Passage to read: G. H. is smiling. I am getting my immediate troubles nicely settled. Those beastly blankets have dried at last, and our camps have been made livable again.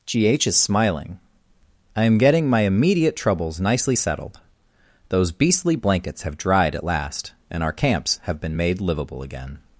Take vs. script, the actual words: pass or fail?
pass